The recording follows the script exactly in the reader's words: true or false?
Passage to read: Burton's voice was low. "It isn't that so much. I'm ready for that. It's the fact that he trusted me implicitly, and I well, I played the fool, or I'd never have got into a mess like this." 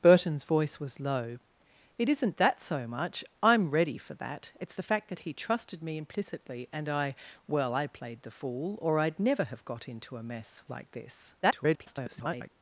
false